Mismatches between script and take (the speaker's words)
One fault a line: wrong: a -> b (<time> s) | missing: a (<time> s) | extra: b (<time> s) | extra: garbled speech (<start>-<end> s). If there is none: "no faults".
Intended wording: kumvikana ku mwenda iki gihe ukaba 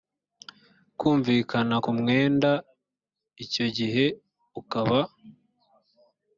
wrong: iki -> icyo (3.4 s)